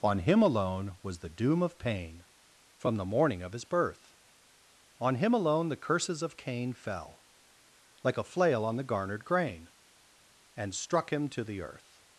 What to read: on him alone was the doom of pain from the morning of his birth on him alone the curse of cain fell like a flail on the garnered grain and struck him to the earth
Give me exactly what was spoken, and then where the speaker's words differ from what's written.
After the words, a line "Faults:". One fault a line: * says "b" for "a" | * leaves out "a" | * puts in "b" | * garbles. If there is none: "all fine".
on him alone was the doom of pain from the morning of his birth on him alone the curses of cain fell like a flail on the garnered grain and struck him to the earth
Faults:
* says "curses" for "curse"